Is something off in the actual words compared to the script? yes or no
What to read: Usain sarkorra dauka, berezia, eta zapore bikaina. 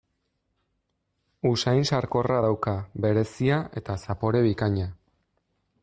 no